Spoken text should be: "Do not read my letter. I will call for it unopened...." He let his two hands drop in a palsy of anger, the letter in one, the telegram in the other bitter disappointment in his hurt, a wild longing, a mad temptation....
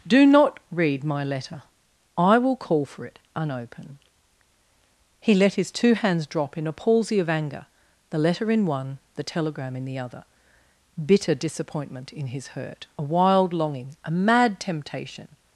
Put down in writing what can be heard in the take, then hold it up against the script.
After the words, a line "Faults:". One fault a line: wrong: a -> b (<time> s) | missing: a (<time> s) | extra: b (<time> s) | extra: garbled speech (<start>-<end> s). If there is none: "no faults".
"Do not read my letter. I will call for it unopened...." He let his two hands drop in a palsy of anger, the letter in one, the telegram in the other bitter disappointment in his hurt, a wild longing, a mad temptation....
Faults:
no faults